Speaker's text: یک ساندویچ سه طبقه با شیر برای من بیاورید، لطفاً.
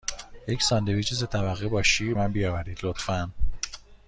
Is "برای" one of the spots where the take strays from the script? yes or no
yes